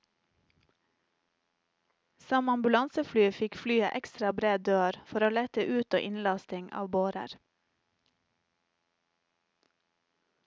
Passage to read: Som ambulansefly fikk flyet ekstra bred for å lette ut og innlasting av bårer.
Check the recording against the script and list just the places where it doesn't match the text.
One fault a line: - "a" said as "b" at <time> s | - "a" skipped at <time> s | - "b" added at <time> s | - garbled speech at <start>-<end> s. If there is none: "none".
- "dør" added at 4.7 s